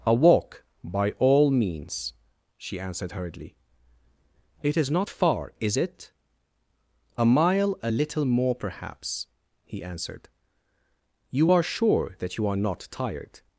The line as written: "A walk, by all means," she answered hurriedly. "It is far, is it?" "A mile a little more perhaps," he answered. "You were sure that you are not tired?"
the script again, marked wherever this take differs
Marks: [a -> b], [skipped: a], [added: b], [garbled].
"A walk, by all means," she answered hurriedly. "It is [added: not] far, is it?" "A mile a little more perhaps," he answered. "You [were -> are] sure that you are not tired?"